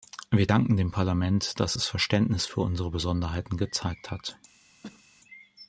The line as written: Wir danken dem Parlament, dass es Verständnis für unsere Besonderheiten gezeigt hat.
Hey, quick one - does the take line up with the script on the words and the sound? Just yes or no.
no